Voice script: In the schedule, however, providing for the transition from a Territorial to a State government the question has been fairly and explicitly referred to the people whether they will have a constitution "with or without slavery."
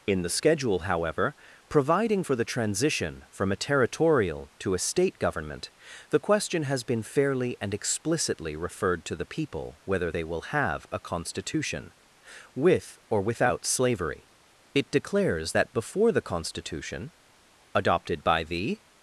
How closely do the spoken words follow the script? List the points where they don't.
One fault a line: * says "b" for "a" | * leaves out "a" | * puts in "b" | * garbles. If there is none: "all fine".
* puts in "It declares that before the constitution adopted by the"